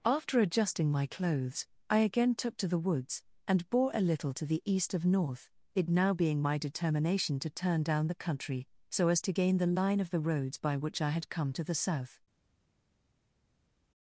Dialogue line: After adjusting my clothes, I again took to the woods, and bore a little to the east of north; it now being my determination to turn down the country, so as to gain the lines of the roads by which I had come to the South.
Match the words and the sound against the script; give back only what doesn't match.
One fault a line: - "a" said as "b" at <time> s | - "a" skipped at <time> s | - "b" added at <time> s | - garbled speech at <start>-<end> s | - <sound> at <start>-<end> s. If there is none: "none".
- "lines" said as "line" at 9.7 s